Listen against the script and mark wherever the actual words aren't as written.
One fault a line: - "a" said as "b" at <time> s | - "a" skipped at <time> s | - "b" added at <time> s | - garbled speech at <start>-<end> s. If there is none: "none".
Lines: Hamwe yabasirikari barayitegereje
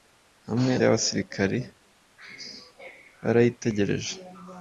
none